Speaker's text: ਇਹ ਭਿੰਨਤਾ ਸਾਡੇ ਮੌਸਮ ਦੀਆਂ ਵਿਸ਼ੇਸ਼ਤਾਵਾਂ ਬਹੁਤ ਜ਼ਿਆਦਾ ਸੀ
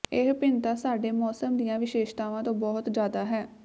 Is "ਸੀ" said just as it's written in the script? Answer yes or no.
no